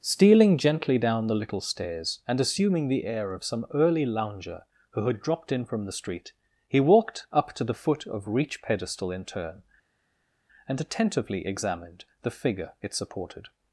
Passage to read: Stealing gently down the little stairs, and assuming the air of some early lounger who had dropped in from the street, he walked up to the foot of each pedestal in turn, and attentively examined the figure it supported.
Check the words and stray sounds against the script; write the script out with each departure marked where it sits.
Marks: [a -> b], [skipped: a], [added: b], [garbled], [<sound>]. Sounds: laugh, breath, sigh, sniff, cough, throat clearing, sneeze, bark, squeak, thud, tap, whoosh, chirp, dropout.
Stealing gently down the little stairs, and assuming the air of some early lounger who had dropped in from the street, he walked up to the foot of [each -> reach] pedestal in turn, and attentively examined the figure it supported.